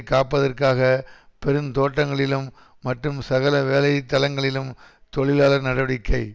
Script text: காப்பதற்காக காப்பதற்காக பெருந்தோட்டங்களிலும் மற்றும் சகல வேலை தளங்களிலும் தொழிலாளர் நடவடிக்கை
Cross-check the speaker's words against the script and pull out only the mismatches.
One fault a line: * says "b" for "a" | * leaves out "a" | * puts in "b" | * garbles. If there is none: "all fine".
* leaves out "காப்பதற்காக"